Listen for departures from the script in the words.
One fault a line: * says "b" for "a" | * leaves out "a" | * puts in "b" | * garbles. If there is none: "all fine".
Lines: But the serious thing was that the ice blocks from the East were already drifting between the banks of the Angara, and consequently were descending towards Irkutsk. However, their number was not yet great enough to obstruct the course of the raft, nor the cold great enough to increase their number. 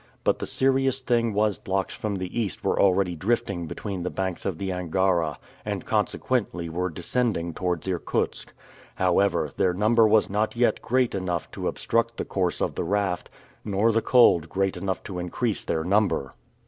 * leaves out "that the ice"